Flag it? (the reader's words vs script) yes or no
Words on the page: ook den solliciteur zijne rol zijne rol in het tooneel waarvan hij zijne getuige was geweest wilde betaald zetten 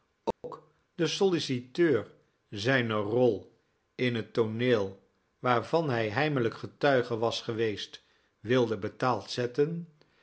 yes